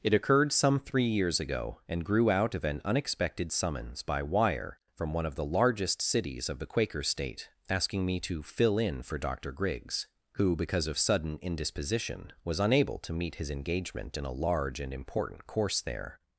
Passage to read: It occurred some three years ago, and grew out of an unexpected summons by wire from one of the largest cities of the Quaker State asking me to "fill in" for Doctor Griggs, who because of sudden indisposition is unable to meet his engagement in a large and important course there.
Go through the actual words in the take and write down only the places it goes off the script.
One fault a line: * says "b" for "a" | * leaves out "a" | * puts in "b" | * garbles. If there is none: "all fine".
* says "was" for "is"